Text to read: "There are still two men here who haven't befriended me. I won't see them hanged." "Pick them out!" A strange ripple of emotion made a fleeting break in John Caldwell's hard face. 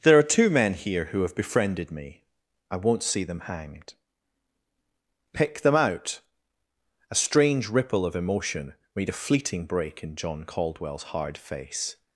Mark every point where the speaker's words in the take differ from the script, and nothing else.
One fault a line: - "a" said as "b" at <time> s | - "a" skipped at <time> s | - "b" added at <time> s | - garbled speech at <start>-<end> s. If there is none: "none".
- "still" skipped at 0.2 s
- "haven't" said as "have" at 1.2 s